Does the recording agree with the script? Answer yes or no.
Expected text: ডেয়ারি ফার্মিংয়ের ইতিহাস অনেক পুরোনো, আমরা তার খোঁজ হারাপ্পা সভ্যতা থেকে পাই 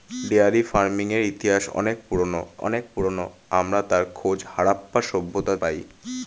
no